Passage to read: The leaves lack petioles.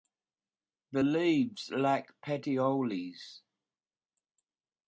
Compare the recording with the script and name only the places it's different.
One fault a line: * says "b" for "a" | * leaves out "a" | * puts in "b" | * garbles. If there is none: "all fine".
all fine